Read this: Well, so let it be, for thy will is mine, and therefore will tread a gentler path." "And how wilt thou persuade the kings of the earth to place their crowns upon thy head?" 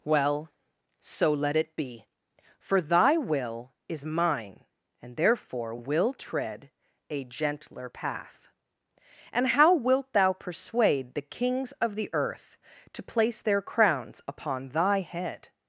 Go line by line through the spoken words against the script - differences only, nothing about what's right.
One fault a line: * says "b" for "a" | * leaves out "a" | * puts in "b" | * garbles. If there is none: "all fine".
all fine